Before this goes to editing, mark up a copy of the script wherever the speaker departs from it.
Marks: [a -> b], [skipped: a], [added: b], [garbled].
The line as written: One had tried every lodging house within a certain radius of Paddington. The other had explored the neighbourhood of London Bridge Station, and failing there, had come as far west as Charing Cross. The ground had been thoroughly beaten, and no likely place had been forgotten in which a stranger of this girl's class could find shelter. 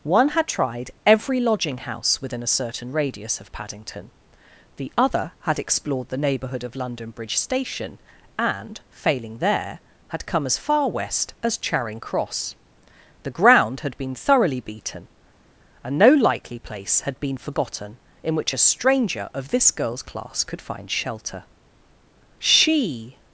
One had tried every lodging house within a certain radius of Paddington. The other had explored the neighbourhood of London Bridge Station, and failing there, had come as far west as Charing Cross. The ground had been thoroughly beaten, and no likely place had been forgotten in which a stranger of this girl's class could find shelter. [added: She]